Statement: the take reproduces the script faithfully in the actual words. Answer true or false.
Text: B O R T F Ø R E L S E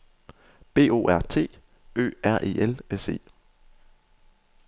false